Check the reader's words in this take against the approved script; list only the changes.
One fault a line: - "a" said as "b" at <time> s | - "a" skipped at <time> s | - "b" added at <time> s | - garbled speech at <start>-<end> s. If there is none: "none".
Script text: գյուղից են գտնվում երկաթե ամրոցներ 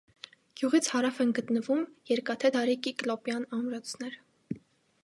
- "հարավ" added at 0.9 s
- "դարի կիկլոպյան" added at 2.5 s